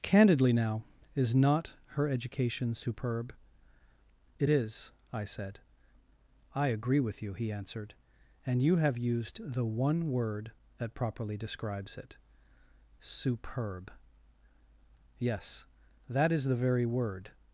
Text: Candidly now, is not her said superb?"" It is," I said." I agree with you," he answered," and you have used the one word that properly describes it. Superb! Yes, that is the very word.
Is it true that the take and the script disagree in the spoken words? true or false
true